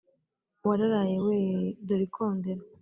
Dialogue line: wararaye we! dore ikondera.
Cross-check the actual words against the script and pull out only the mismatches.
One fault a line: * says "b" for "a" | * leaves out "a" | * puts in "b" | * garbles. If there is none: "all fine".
all fine